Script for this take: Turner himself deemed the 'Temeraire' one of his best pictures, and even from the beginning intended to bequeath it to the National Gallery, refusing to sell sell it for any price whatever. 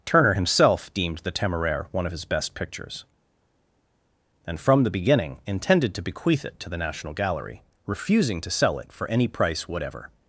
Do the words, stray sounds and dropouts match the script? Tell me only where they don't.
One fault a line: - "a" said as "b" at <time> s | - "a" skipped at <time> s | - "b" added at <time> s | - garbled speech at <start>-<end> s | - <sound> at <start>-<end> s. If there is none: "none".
- "even" skipped at 4.6 s
- "sell" skipped at 8.8 s